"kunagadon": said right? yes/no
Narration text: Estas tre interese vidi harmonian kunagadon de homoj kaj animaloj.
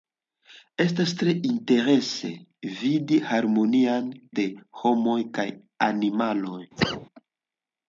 no